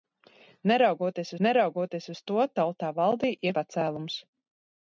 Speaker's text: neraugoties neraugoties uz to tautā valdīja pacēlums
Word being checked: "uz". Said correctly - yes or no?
yes